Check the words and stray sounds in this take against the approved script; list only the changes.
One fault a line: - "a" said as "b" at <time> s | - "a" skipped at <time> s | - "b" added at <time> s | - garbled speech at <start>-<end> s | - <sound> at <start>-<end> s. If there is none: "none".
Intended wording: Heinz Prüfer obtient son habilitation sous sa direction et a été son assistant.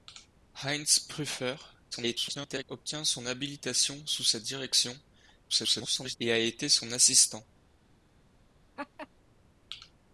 - garbled speech at 1.9-2.6 s
- garbled speech at 5.5-6.2 s
- laugh at 8.8-9.1 s